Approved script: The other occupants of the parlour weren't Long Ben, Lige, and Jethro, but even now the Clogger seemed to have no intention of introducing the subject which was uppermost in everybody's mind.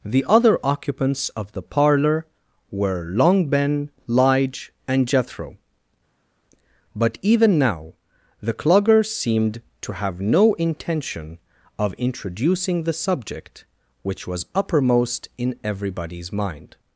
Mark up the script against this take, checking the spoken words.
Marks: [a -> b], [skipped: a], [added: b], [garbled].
The other occupants of the parlour [weren't -> were] Long Ben, Lige, and Jethro, but even now the Clogger seemed to have no intention of introducing the subject which was uppermost in everybody's mind.